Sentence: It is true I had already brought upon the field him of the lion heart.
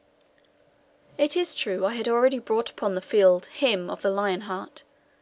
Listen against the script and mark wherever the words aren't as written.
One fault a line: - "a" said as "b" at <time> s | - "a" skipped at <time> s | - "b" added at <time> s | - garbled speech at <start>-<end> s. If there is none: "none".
none